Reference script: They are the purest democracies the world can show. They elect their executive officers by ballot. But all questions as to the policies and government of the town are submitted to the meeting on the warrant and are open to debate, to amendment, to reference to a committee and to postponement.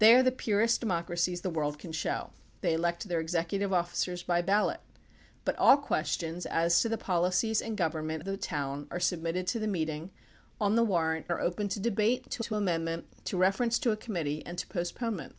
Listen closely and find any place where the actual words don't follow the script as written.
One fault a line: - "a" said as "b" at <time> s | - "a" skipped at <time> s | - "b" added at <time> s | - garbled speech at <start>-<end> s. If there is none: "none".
- "of" skipped at 8.2 s
- "and" skipped at 11.3 s
- "to" added at 12.4 s